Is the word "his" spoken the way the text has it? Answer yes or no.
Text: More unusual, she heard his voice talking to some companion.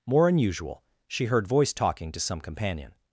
no